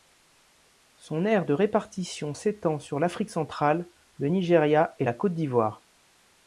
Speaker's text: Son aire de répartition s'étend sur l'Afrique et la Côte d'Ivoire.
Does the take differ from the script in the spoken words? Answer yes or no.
yes